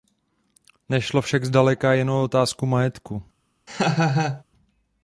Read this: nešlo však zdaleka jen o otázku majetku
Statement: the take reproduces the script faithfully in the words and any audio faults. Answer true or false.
false